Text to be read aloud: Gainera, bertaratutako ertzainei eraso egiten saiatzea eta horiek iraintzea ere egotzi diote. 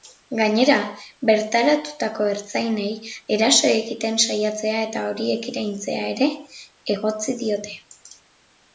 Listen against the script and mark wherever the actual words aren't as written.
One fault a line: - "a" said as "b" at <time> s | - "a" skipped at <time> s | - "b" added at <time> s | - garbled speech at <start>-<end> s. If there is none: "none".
none